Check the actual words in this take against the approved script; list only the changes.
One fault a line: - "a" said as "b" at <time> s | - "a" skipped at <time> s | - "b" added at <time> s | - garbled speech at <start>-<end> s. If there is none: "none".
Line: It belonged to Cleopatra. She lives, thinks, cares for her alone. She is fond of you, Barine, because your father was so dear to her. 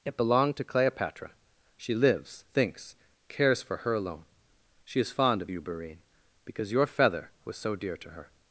- "father" said as "feather" at 6.9 s